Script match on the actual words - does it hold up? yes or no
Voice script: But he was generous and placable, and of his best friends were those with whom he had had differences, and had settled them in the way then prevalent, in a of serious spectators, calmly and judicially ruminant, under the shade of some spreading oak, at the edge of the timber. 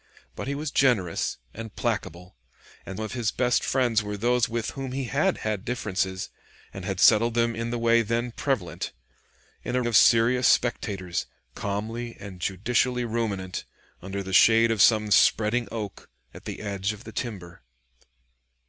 yes